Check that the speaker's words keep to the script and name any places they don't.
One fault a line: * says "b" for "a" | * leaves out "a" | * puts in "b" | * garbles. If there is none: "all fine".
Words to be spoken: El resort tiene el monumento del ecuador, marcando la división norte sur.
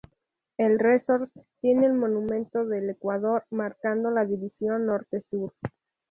all fine